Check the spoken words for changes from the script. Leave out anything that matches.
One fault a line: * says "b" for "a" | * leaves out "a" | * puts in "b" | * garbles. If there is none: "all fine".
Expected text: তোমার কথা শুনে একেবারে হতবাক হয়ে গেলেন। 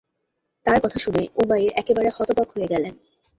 * says "তার" for "তোমার"
* puts in "উমাইর"